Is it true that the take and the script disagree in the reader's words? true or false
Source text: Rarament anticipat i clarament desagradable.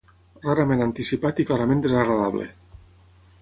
false